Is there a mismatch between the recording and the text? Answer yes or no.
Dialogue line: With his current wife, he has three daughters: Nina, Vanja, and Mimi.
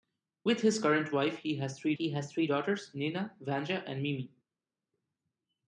yes